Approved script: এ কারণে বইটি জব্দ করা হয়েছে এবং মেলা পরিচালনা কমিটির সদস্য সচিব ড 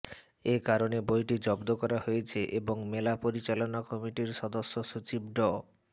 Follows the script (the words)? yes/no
yes